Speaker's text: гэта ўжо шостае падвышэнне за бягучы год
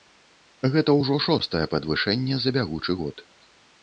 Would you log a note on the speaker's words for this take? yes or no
no